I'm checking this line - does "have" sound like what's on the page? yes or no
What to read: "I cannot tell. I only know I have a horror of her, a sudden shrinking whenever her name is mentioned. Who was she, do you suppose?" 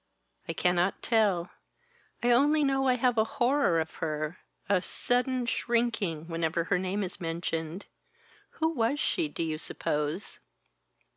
yes